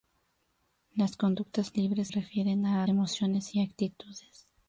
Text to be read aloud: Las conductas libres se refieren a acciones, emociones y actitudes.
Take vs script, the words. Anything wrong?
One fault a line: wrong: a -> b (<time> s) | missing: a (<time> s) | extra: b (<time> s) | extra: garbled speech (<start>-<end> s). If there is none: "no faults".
missing: se (2.1 s)
missing: acciones (2.8 s)